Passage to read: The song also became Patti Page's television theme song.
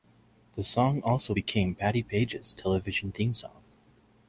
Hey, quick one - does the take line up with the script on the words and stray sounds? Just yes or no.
yes